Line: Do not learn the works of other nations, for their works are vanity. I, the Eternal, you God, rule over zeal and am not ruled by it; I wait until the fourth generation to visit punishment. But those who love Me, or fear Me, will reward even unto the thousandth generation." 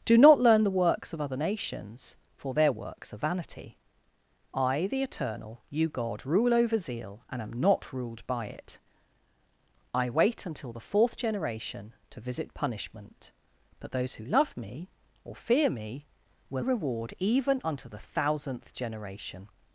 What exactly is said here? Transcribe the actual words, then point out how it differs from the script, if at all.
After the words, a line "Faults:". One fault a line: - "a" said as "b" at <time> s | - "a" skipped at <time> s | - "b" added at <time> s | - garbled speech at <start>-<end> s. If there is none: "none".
Do not learn the works of other nations, for their works are vanity. I, the Eternal, you God, rule over zeal and am not ruled by it; I wait until the fourth generation to visit punishment. But those who love Me, or fear Me, will reward even unto the thousandth generation."
Faults:
none